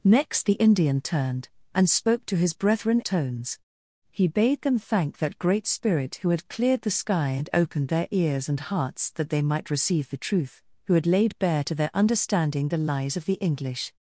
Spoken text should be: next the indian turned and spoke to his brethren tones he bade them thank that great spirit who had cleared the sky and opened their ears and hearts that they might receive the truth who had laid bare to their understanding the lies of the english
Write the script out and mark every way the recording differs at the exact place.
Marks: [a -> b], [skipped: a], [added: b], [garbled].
next the indian turned and spoke to his brethren tones he bade them thank that great spirit who had cleared the sky and opened their ears and hearts that they might receive the truth who had laid bare to their understanding the lies of the english